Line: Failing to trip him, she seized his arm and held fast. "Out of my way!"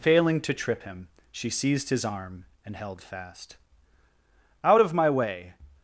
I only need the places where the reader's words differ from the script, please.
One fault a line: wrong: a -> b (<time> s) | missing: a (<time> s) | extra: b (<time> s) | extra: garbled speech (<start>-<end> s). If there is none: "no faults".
no faults